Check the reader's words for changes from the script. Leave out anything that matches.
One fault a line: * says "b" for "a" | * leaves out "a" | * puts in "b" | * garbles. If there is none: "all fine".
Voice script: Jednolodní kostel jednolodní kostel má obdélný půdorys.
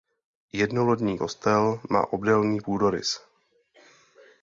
* leaves out "jednolodní kostel"